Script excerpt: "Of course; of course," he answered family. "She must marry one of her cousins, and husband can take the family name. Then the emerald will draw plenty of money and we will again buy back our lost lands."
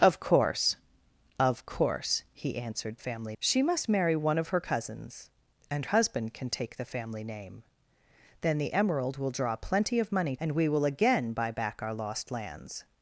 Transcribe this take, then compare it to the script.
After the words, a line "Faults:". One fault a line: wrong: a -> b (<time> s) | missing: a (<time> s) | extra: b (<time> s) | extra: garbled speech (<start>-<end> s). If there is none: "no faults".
"Of course; of course," he answered family. "She must marry one of her cousins, and husband can take the family name. Then the emerald will draw plenty of money and we will again buy back our lost lands."
Faults:
no faults